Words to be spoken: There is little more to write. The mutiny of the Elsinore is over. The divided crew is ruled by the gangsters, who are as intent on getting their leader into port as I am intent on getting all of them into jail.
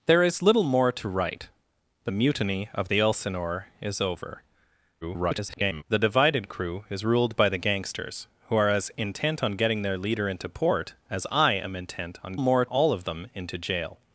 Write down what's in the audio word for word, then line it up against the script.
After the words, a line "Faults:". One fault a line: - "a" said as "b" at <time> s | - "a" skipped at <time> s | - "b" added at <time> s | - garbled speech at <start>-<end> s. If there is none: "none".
There is little more to write. The mutiny of the Elsinore is over. [garbled] The divided crew is ruled by the gangsters, who are as intent on getting their leader into port as I am intent on more all of them into jail.
Faults:
- garbled speech at 5.0-5.8 s
- "getting" said as "more" at 12.4 s